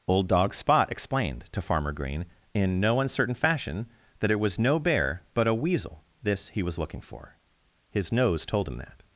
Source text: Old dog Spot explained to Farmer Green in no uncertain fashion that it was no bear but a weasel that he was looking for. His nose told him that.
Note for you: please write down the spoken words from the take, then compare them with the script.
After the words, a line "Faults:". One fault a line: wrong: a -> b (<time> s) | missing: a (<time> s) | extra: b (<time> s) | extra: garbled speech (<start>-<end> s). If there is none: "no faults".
Old dog Spot explained to Farmer Green in no uncertain fashion that it was no bear but a weasel this he was looking for. His nose told him that.
Faults:
wrong: that -> this (6.2 s)